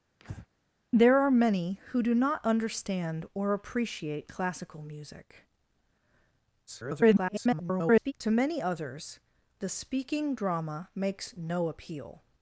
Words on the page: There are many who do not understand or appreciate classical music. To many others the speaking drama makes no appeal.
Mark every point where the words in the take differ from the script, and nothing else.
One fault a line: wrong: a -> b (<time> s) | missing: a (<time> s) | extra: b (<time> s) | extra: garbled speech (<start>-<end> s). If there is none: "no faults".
extra: garbled speech (6.7-8.1 s)